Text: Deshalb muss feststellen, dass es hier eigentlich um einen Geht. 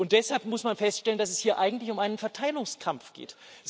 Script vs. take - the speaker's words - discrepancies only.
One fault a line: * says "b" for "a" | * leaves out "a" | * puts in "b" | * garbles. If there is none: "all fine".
* puts in "man"
* puts in "Verteilungskampf"